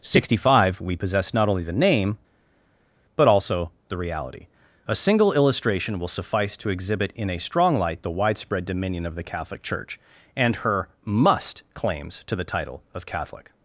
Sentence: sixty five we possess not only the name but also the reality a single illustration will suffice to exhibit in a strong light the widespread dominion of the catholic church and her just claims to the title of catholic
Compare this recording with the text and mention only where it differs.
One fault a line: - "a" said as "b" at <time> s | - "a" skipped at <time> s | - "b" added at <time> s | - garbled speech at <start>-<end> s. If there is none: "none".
- "just" said as "must" at 11.0 s